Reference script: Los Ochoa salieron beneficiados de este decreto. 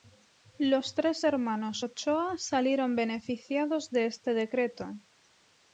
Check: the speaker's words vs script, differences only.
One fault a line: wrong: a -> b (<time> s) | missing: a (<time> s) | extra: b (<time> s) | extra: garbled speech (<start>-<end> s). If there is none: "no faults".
extra: tres hermanos (0.9 s)